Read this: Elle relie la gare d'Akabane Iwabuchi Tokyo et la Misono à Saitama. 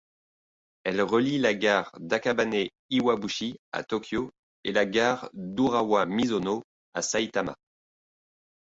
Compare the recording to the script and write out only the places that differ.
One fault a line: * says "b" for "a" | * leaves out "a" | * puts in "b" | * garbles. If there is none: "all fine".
* puts in "à"
* puts in "gare d'Urawa"